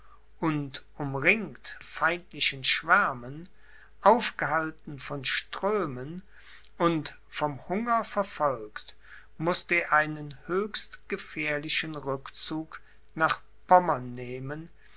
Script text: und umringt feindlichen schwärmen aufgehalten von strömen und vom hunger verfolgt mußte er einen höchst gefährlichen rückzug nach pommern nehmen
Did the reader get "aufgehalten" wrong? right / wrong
right